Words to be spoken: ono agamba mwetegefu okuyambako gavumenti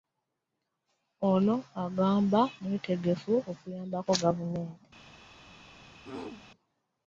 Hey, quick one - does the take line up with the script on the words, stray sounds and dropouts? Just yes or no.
no